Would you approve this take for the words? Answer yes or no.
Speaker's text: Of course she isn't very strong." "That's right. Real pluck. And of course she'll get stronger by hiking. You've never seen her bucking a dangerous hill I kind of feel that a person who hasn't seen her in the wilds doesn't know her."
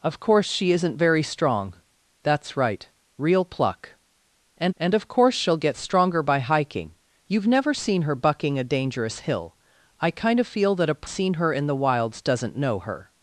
no